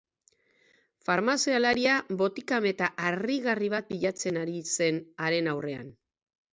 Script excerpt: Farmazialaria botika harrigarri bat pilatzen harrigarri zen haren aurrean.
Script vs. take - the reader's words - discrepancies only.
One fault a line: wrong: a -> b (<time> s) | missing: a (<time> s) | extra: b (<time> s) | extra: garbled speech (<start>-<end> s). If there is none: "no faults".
extra: meta (2.7 s)
wrong: harrigarri -> ari (4.5 s)